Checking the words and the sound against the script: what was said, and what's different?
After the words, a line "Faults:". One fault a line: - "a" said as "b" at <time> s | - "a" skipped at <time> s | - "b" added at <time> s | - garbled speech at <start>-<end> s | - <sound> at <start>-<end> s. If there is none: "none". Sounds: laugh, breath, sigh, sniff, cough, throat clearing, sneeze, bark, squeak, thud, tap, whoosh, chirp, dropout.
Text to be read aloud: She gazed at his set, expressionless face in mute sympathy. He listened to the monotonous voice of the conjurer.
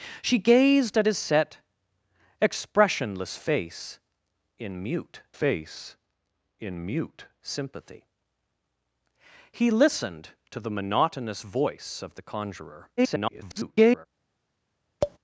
She gazed at his set, expressionless face in mute face in mute sympathy. He listened to the monotonous voice of the conjurer. [garbled]
Faults:
- "face in mute" added at 5.3 s
- garbled speech at 13.0-14.1 s
- tap at 15.0-15.2 s